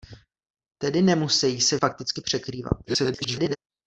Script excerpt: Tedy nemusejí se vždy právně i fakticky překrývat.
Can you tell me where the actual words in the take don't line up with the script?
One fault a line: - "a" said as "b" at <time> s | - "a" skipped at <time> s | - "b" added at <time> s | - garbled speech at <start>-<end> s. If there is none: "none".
- "vždy právně" skipped at 1.8 s
- garbled speech at 2.9-3.6 s